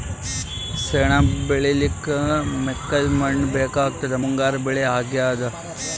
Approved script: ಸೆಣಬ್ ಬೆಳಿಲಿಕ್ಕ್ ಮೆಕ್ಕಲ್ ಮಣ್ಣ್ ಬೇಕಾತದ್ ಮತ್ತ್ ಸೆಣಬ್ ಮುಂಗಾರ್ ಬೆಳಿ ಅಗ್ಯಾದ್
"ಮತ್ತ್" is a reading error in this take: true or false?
true